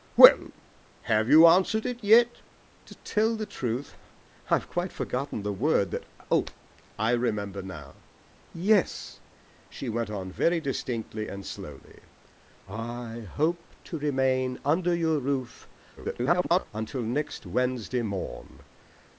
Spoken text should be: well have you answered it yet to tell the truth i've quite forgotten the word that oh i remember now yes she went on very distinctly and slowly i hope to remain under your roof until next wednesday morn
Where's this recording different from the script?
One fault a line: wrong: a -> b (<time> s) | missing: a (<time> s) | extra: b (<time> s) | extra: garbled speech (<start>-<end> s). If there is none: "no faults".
extra: garbled speech (16.0-16.7 s)